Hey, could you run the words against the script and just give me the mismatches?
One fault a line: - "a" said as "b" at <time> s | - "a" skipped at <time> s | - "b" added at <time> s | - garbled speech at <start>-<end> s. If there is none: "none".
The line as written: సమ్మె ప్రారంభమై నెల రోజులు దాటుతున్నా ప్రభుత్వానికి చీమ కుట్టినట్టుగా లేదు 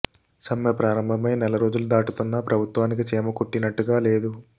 none